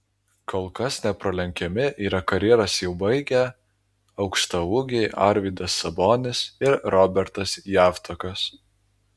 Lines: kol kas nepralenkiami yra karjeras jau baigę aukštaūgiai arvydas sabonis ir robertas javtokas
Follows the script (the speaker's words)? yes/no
yes